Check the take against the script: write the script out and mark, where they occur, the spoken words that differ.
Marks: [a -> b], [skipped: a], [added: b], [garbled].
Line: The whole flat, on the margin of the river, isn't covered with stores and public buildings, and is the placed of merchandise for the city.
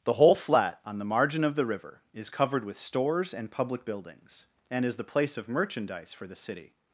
The whole flat, on the margin of the river, [isn't -> is] covered with stores and public buildings, and is the [placed -> place] of merchandise for the city.